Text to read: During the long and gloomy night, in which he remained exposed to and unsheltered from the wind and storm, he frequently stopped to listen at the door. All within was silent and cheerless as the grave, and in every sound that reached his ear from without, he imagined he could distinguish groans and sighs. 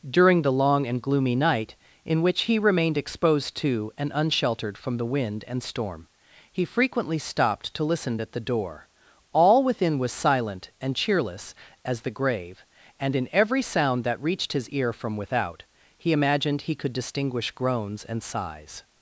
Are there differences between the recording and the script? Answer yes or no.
no